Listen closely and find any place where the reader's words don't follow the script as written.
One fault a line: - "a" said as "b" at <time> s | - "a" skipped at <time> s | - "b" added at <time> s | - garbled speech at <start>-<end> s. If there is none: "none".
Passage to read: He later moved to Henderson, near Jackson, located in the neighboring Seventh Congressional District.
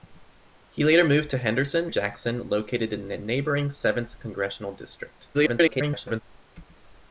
- "near" skipped at 1.9 s
- garbled speech at 5.3-6.2 s